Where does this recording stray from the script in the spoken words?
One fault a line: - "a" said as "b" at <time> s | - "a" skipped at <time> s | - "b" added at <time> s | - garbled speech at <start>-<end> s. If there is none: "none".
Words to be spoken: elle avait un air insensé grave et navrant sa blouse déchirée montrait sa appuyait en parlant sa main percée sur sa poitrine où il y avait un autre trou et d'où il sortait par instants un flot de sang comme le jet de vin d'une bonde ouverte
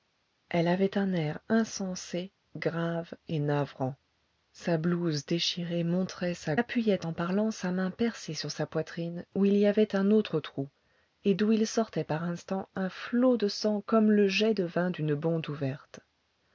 none